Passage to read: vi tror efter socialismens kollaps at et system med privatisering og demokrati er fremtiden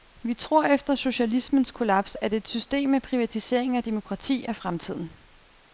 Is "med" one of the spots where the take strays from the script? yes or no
no